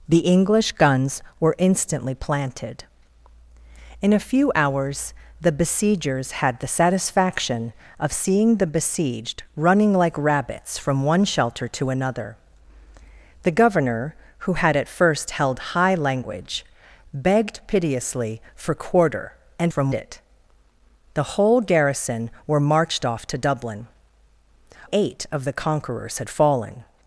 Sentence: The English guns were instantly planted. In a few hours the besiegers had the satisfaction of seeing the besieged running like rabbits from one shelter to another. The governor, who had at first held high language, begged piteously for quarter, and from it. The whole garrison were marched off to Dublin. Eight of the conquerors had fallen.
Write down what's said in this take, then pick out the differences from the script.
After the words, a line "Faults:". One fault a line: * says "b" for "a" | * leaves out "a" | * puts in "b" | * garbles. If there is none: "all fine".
The English guns were instantly planted. In a few hours the besiegers had the satisfaction of seeing the besieged running like rabbits from one shelter to another. The governor, who had at first held high language, begged piteously for quarter, and from it. The whole garrison were marched off to Dublin. Eight of the conquerors had fallen.
Faults:
all fine